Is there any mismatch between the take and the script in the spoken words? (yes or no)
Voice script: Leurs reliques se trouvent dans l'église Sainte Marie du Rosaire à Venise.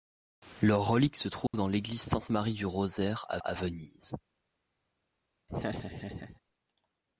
yes